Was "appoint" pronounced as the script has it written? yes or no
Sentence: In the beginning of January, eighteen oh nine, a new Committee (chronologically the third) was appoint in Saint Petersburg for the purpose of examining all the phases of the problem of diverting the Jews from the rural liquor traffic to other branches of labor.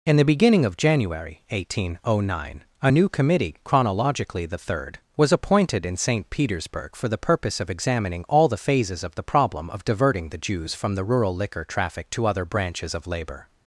no